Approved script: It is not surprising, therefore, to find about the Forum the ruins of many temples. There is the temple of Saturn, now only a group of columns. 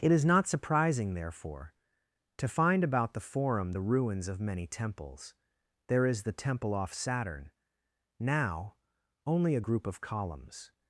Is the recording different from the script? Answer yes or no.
yes